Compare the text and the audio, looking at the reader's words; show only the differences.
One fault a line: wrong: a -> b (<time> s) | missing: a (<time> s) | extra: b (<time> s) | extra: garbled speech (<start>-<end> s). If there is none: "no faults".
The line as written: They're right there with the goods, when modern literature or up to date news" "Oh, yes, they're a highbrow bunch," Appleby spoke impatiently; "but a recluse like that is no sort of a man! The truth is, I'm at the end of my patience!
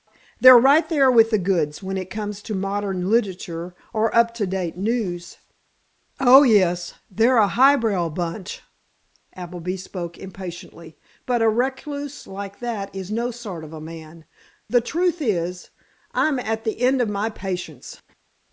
extra: it comes to (1.9 s)